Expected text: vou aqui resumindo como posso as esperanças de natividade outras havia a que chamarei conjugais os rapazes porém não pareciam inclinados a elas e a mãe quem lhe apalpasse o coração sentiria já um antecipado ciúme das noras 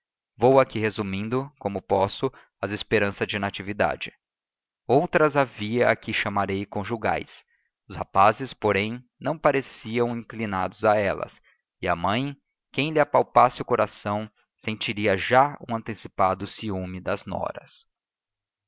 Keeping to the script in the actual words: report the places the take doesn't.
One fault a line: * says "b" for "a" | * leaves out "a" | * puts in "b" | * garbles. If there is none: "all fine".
all fine